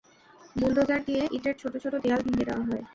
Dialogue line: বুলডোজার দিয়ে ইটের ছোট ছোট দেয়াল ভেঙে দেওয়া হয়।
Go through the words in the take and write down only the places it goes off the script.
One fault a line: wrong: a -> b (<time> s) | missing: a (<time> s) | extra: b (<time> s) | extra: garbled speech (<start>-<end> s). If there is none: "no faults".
no faults